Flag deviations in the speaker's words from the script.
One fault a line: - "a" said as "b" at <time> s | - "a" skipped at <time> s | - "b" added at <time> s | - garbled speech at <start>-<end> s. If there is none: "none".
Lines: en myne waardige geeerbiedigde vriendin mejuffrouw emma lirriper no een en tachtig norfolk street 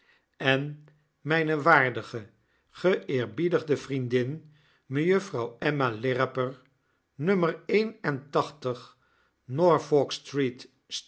none